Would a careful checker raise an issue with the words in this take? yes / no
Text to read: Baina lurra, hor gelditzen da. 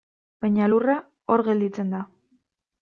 no